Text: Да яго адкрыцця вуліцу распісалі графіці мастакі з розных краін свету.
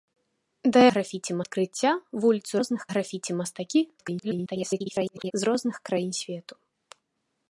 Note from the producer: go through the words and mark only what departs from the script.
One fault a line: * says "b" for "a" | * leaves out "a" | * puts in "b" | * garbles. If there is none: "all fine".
* says "графіці" for "яго"
* says "розных" for "распісалі"
* garbles